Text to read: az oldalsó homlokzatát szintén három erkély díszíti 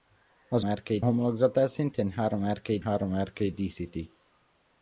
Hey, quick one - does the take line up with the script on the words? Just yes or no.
no